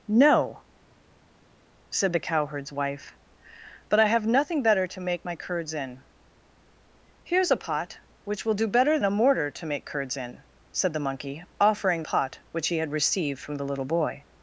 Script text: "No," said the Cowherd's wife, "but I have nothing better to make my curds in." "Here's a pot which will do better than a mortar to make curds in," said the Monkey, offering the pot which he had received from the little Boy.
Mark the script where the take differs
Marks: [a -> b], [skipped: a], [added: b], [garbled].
"No," said the Cowherd's wife, "but I have nothing better to make my curds in." "Here's a pot which will do better [skipped: than] a mortar to make curds in," said the Monkey, offering [skipped: the] pot which he had received from the little Boy.